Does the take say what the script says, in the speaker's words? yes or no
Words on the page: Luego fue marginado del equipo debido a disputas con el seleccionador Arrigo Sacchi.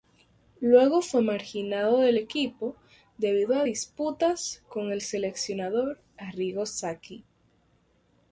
yes